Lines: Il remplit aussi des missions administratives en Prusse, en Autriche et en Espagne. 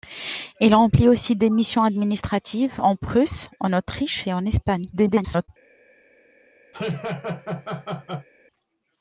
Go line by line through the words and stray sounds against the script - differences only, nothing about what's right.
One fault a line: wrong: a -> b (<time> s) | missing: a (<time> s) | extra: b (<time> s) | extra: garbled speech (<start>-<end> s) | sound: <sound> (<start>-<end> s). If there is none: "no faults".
extra: garbled speech (4.9-5.5 s)
sound: laugh (6.7-8.3 s)